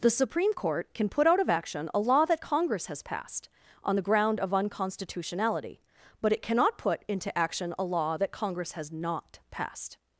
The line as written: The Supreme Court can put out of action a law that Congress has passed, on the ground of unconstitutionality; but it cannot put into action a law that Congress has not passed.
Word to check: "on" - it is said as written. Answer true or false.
true